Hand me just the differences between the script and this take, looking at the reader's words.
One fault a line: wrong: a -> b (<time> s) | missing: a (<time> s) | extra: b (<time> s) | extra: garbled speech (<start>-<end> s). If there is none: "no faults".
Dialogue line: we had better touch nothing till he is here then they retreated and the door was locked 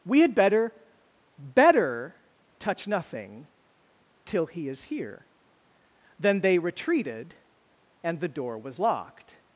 extra: better (1.4 s)